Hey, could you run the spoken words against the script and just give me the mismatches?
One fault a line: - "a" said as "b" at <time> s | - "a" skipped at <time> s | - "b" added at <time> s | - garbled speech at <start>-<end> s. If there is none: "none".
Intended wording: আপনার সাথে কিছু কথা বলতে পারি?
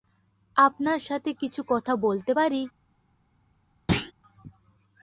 none